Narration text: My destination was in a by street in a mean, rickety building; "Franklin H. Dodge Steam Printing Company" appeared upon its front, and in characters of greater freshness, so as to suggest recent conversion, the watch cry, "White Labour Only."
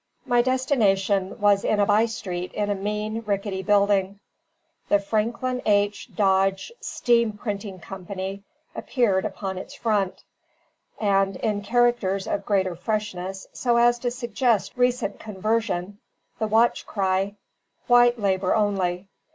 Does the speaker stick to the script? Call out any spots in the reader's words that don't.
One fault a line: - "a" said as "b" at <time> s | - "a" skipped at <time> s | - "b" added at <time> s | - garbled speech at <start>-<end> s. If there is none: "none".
- "The" added at 4.9 s